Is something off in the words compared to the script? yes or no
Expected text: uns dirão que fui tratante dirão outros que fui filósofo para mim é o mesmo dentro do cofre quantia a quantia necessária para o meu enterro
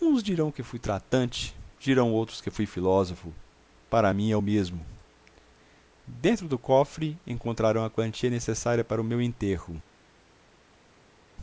yes